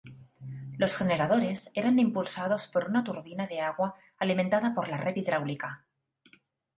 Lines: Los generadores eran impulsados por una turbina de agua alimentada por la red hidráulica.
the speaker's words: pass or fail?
pass